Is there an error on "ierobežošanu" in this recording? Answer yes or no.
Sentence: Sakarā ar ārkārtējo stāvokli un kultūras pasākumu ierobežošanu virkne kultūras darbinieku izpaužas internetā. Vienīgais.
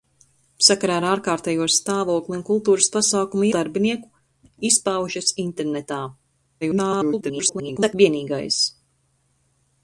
yes